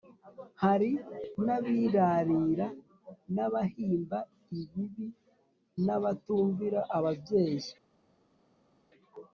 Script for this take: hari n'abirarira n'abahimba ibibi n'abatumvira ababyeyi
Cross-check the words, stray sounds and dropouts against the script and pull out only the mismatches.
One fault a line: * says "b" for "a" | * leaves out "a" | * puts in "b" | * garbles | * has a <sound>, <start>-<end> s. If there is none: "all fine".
all fine